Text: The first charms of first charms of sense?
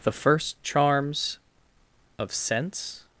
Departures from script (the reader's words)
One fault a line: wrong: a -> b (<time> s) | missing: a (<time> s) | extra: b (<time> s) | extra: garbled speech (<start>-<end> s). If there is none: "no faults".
missing: first charms of (2.3 s)